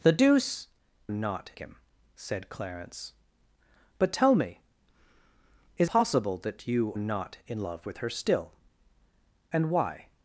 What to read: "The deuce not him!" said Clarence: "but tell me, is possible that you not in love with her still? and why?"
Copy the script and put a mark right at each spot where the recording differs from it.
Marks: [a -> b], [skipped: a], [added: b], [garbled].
"The deuce not him!" said Clarence: "but tell me, is possible that you not in love with her still? and why?"